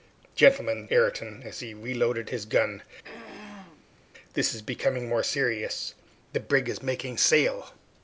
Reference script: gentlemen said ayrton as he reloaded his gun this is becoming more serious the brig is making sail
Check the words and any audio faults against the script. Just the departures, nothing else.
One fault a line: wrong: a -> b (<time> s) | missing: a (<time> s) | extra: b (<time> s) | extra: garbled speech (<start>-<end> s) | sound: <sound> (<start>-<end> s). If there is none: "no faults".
missing: said (0.9 s)
sound: throat clearing (3.0-4.0 s)